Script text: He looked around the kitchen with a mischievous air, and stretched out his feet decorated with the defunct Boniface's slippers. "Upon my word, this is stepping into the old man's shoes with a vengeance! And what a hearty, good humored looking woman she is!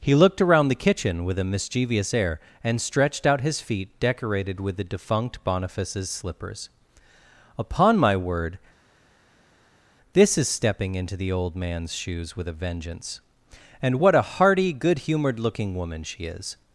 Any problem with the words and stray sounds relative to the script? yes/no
no